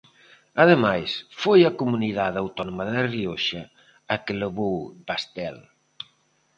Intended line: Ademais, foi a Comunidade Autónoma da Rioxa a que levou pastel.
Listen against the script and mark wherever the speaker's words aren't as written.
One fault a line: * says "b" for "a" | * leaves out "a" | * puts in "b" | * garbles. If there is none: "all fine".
all fine